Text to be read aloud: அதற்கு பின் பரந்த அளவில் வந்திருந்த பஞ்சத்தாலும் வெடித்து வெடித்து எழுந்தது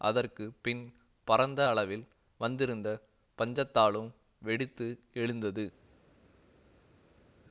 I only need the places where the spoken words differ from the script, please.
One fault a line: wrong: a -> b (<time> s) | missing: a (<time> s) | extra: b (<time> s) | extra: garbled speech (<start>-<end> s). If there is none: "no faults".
missing: வெடித்து (4.9 s)